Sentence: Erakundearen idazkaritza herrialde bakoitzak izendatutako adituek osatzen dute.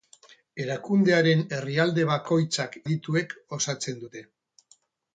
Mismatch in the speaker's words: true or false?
true